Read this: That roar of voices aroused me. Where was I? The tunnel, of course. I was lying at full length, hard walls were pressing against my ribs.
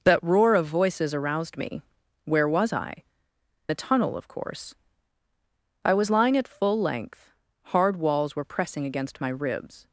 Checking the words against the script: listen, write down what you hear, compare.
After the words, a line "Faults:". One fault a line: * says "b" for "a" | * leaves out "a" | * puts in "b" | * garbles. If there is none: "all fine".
That roar of voices aroused me. Where was I? The tunnel, of course. I was lying at full length, hard walls were pressing against my ribs.
Faults:
all fine